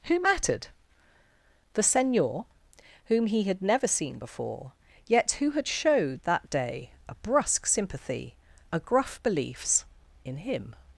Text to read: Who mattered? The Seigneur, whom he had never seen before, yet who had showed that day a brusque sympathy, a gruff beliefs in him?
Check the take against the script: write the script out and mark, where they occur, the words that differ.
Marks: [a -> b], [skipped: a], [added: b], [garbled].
Who mattered? The Seigneur, whom he had never seen before, yet who had showed that day a brusque sympathy, a gruff beliefs in him?